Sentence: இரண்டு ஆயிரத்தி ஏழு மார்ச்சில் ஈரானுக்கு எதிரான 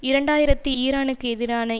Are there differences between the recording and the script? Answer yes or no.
yes